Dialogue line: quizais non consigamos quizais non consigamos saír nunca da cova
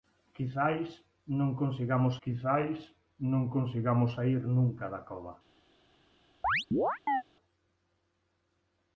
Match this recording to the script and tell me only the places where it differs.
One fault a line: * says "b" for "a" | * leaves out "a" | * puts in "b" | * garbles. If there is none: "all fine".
all fine